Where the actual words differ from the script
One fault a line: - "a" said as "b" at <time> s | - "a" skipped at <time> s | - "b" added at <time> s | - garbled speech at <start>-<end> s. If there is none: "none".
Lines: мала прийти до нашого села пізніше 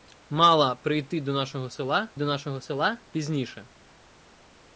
- "до нашого села" added at 2.1 s